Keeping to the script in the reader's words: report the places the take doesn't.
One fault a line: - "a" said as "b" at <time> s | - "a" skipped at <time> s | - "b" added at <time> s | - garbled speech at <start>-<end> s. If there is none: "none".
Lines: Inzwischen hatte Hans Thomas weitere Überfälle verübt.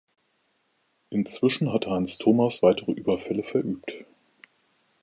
none